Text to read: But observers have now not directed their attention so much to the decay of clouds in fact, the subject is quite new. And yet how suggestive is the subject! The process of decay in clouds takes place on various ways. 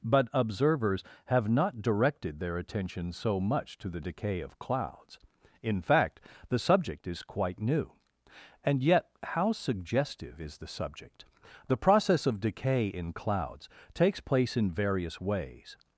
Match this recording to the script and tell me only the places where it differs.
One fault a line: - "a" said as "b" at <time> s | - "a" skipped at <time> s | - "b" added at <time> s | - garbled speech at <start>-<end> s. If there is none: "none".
- "now" skipped at 1.5 s
- "on" said as "in" at 14.5 s